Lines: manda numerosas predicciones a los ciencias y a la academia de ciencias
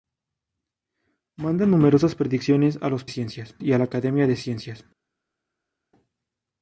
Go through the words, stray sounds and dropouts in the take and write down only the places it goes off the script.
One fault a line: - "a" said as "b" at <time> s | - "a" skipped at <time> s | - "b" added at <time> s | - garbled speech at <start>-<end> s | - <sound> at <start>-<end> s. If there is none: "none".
none